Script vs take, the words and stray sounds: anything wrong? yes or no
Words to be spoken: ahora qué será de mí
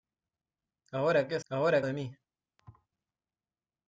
yes